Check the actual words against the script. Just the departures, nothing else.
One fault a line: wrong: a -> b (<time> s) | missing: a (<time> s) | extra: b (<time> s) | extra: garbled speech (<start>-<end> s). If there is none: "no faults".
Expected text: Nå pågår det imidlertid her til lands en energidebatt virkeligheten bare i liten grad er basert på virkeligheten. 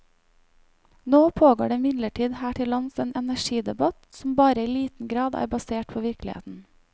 wrong: virkeligheten -> som (4.2 s)